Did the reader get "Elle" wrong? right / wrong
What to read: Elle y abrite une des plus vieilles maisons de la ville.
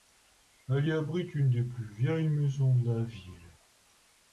right